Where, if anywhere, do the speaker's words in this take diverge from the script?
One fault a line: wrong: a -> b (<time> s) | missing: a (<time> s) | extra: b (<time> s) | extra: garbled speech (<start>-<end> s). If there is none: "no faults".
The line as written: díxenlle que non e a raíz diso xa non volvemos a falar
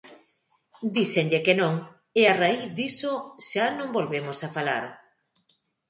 no faults